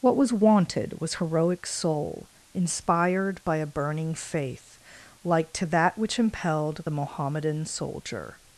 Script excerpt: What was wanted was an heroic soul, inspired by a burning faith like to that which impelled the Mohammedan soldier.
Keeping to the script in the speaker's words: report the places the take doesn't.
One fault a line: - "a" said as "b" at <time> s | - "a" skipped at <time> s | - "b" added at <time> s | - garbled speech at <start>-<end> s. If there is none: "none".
- "an" skipped at 1.1 s